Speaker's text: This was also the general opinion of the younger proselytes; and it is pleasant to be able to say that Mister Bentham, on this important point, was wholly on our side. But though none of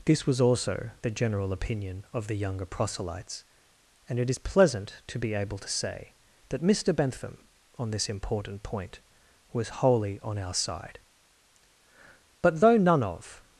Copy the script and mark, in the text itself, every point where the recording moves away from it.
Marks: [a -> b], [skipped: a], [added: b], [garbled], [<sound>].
This was also the general opinion of the younger proselytes; and it is pleasant to be able to say that Mister Bentham, on this important point, was wholly on our side. But though none of